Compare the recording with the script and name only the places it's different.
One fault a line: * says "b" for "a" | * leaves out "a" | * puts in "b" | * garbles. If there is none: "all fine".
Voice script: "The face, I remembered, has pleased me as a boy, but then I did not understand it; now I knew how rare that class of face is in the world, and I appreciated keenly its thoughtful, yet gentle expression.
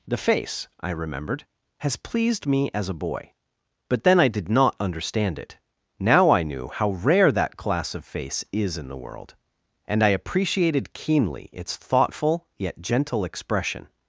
all fine